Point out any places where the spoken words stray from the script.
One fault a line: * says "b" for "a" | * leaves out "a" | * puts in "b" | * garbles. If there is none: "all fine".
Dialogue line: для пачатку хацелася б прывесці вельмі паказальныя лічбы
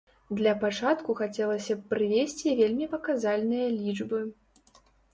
all fine